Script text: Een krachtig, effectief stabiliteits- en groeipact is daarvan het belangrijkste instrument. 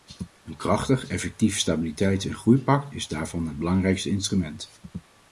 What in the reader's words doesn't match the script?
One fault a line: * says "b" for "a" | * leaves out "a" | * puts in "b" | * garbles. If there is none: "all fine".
all fine